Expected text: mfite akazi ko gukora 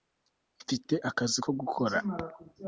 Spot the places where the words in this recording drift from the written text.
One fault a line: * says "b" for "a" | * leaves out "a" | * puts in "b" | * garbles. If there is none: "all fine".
all fine